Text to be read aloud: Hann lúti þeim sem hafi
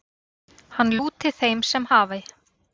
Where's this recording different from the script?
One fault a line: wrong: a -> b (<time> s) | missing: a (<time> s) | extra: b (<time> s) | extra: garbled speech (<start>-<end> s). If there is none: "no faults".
no faults